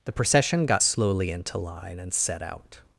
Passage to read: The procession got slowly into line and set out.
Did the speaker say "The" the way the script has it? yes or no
yes